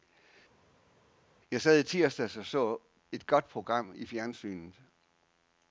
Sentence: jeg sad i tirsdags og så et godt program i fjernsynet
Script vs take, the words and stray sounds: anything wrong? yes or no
no